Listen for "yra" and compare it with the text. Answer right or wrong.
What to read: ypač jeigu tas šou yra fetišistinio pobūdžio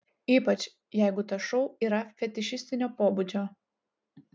right